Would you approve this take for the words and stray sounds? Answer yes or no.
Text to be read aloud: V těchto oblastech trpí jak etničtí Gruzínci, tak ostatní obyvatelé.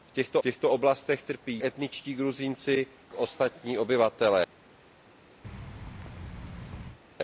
no